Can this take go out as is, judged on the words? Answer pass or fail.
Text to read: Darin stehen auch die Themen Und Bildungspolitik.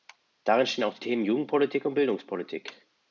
fail